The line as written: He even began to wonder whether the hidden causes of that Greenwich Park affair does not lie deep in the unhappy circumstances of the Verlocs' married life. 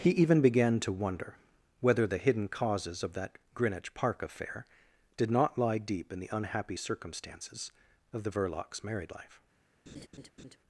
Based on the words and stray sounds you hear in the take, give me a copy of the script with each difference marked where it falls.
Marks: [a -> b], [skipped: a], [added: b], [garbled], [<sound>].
He even began to wonder whether the hidden causes of that Greenwich Park affair [does -> did] not lie deep in the unhappy circumstances of the Verlocs' married life. [laugh]